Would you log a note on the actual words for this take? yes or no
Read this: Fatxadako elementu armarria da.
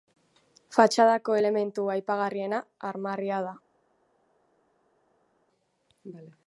yes